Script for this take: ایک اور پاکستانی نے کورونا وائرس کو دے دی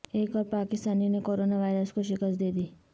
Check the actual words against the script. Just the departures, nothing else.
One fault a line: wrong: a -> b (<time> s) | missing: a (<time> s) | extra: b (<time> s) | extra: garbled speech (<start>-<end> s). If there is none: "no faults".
extra: شکست (2.0 s)